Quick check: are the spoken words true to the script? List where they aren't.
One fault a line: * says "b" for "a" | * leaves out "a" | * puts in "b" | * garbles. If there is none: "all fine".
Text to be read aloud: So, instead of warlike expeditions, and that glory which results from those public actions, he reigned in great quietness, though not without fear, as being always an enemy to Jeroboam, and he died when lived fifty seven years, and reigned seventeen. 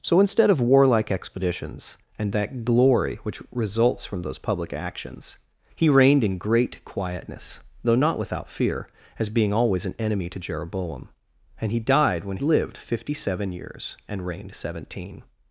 all fine